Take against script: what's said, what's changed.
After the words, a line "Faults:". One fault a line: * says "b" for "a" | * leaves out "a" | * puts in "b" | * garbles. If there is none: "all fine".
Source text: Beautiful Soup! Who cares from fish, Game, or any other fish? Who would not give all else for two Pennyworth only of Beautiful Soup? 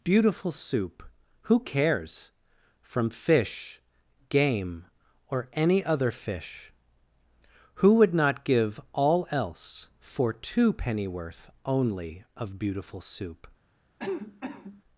Beautiful Soup! Who cares from fish, Game, or any other fish? Who would not give all else for two Pennyworth only of Beautiful Soup?
Faults:
all fine